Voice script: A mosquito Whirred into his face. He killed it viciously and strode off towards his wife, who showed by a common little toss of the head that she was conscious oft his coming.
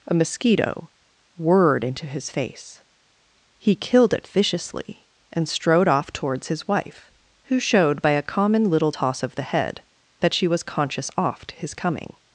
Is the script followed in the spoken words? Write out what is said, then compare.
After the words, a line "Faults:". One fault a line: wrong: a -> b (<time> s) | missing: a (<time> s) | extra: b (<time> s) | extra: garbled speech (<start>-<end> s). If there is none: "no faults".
A mosquito Whirred into his face. He killed it viciously and strode off towards his wife, who showed by a common little toss of the head that she was conscious oft his coming.
Faults:
no faults